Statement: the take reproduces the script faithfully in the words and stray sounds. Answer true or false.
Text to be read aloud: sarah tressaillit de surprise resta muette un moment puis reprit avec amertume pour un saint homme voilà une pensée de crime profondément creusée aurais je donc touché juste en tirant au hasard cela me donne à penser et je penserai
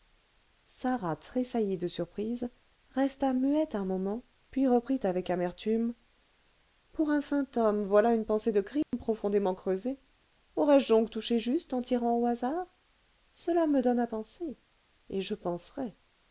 false